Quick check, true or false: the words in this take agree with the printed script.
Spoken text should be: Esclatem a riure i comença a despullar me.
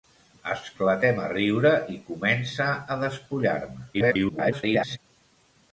false